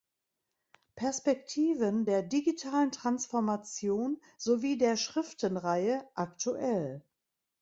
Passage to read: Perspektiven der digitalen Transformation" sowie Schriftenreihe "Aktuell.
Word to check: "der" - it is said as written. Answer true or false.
true